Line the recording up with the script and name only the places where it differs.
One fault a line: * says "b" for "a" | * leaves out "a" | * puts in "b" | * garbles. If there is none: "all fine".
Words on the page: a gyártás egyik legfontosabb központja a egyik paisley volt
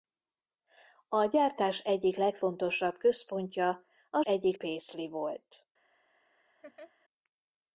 all fine